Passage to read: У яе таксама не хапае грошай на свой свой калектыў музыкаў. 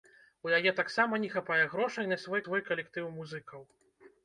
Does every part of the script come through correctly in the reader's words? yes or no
yes